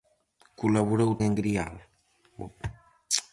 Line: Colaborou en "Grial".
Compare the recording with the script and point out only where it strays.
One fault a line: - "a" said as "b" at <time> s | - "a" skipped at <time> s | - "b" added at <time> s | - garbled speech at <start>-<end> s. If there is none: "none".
none